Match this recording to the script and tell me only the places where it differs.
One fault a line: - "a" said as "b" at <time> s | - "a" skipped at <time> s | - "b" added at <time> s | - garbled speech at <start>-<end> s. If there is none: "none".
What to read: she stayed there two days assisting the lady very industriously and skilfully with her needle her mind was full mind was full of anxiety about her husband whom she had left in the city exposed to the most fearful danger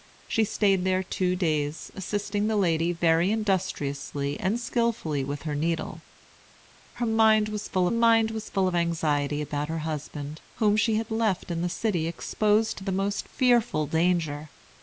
none